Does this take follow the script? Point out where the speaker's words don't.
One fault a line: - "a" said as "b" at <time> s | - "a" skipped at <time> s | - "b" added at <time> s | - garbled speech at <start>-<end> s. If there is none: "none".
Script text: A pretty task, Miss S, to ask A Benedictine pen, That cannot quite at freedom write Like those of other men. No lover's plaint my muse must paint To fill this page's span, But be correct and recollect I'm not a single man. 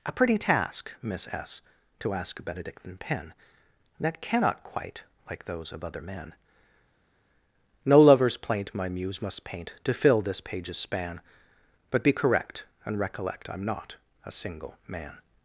- "at freedom write" skipped at 5.0 s